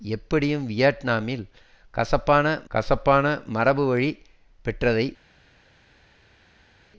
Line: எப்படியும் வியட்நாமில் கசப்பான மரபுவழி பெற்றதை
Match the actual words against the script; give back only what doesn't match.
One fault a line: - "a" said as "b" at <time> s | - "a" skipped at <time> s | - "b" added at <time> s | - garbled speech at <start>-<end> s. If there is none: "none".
- "கசப்பான" added at 2.7 s